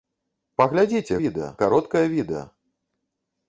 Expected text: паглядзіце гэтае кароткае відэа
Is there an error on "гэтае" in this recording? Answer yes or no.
yes